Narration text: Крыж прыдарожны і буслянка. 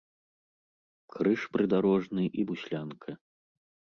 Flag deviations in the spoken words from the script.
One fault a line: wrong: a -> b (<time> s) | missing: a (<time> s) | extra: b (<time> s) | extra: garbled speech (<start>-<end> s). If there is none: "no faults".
no faults